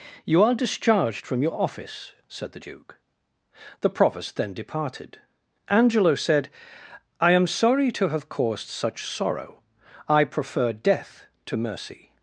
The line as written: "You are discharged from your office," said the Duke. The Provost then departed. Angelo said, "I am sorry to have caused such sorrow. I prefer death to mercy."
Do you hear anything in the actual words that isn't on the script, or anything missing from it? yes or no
no